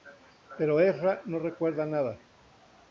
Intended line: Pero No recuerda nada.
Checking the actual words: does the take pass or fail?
fail